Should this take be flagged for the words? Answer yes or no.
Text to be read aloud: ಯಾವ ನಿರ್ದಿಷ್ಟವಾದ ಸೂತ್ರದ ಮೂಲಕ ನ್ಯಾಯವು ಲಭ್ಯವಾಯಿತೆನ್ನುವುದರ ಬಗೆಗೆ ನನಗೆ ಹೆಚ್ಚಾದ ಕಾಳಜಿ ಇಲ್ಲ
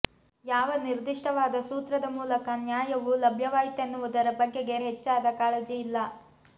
yes